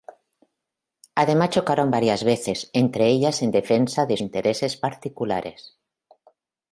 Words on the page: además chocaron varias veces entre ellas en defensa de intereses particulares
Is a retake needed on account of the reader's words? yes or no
no